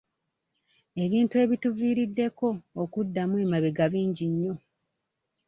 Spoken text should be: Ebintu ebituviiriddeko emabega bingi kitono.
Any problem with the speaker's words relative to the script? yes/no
yes